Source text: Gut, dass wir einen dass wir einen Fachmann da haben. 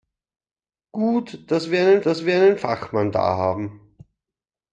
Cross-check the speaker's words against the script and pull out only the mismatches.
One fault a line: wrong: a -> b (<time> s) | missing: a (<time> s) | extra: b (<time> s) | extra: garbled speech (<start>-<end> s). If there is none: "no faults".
no faults